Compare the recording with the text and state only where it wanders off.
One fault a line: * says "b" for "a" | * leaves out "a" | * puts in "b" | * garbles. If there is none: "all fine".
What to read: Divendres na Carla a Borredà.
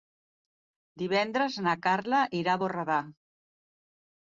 * puts in "irà"